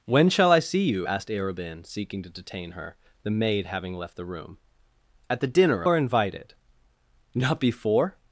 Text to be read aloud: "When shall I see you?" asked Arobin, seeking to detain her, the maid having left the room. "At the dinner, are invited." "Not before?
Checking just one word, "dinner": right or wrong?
right